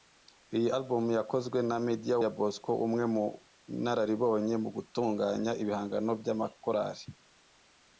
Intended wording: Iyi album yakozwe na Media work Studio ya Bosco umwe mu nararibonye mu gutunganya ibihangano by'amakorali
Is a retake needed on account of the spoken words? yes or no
yes